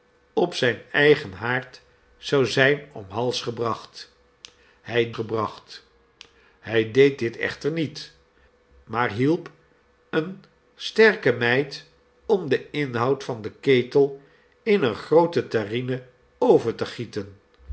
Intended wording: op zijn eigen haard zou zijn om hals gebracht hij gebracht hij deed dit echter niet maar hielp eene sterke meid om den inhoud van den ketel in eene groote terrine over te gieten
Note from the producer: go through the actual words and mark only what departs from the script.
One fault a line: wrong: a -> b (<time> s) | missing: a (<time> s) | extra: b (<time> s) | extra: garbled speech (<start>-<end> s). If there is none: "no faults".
no faults